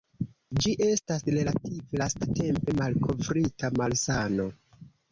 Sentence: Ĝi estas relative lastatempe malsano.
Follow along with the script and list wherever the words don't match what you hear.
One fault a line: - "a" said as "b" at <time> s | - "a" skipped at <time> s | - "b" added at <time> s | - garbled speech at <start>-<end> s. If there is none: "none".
- "malkovrita" added at 2.8 s